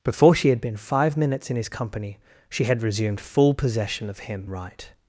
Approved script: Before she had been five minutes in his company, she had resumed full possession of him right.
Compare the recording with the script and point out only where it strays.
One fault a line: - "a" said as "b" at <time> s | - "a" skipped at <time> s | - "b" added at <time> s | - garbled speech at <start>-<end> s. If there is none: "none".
none